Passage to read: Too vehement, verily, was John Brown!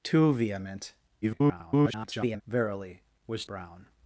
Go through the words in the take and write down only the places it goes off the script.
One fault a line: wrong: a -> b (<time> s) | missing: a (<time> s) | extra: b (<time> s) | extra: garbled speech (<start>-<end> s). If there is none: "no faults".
extra: garbled speech (1.2-2.4 s)
missing: John (3.4 s)